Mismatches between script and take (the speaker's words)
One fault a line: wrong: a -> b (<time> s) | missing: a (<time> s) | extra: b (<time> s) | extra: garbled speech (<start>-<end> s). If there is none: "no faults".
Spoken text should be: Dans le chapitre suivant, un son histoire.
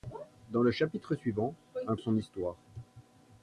no faults